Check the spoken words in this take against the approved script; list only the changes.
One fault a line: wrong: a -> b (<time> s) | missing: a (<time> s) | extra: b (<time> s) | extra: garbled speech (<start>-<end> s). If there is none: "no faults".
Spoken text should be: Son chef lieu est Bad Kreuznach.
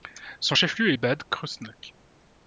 no faults